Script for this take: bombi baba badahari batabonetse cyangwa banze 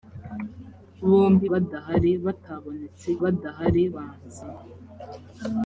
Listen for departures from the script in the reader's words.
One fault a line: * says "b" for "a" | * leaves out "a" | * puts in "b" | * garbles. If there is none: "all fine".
* leaves out "baba"
* says "badahari" for "cyangwa"